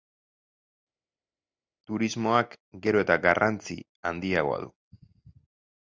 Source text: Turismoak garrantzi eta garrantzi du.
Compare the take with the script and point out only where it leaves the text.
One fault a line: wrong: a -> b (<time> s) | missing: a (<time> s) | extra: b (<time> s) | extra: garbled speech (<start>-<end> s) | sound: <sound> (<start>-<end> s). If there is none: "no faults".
wrong: garrantzi -> gero (2.9 s)
extra: handiagoa (4.1 s)